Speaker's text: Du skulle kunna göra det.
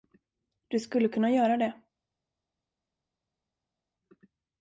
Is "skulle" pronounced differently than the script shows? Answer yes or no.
no